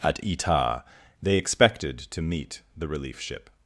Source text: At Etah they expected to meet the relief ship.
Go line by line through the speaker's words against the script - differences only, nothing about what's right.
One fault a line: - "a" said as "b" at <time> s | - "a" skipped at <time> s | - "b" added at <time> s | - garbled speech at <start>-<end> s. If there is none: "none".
none